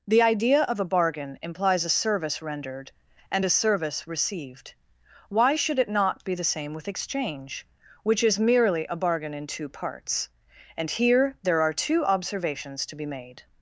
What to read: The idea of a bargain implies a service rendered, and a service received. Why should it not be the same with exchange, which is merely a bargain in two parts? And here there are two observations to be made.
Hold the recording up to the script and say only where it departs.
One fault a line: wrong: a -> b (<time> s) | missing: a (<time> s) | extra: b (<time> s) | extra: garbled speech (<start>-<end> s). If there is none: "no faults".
no faults